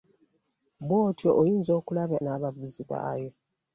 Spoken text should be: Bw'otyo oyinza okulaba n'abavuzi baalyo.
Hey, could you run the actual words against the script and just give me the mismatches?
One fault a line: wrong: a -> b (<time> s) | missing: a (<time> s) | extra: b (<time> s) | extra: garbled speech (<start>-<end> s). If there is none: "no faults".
no faults